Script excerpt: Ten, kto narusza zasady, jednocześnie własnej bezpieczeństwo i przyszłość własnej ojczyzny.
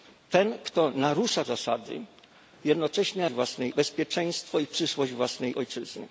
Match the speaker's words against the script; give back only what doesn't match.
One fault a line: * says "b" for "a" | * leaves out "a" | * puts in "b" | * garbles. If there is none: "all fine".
all fine